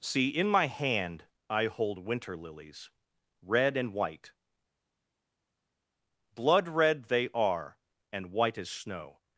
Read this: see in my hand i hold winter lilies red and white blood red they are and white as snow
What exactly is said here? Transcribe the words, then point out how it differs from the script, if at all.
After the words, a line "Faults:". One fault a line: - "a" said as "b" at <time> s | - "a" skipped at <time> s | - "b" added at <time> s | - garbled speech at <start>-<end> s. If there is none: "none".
see in my hand i hold winter lilies red and white blood red they are and white as snow
Faults:
none